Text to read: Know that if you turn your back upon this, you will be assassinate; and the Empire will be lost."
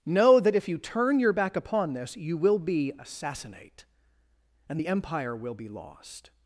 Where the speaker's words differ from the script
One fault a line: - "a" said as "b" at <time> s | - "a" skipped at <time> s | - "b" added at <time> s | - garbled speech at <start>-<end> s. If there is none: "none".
none